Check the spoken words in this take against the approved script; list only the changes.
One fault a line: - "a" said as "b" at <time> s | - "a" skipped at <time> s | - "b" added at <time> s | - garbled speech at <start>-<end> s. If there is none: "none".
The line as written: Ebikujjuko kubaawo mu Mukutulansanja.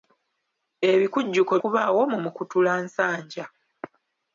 none